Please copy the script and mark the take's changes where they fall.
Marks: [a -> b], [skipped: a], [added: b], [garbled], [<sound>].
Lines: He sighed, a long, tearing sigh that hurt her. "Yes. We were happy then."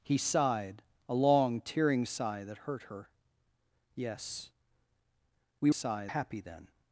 He sighed, a long, tearing sigh that hurt her. "Yes. We [were -> sigh] happy then."